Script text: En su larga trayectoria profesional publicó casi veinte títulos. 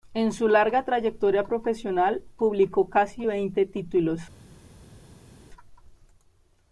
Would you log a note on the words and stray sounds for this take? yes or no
no